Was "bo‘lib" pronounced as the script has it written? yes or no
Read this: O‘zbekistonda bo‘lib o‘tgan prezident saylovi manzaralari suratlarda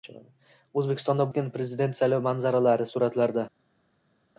no